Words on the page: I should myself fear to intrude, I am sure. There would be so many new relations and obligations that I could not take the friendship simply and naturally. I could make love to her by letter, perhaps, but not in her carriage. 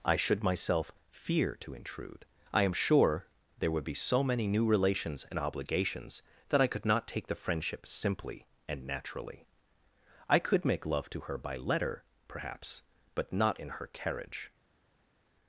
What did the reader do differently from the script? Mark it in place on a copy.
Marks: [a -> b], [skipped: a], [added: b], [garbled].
I should myself fear to intrude, I am sure. There would be so many new relations and obligations that I could not take the friendship simply and naturally. I could make love to her by letter, perhaps, but not in her carriage.